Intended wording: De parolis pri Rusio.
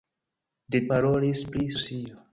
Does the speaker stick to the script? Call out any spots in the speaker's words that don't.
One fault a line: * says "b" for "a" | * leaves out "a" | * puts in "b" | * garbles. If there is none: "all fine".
all fine